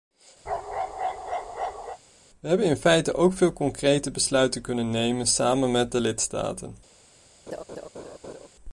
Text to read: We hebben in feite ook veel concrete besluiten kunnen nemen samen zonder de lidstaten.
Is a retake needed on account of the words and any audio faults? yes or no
yes